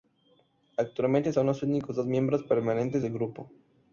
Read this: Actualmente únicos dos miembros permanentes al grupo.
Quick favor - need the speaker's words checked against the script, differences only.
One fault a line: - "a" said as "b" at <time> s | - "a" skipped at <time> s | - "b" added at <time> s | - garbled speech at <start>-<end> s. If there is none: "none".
- "son los" added at 1.3 s
- "al" said as "del" at 3.0 s